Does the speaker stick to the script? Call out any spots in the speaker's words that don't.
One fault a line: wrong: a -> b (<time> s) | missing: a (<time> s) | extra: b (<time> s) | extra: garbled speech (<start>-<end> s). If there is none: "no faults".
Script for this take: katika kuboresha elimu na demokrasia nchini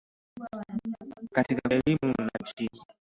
missing: kuboresha (1.7 s)
missing: demokrasia (2.4 s)